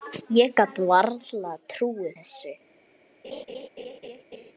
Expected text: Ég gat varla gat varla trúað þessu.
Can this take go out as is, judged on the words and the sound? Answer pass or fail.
fail